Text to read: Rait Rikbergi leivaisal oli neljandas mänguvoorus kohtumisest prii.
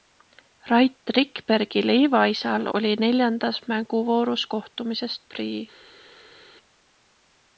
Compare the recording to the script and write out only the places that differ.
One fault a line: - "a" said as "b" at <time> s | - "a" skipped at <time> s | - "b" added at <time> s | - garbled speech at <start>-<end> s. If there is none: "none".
none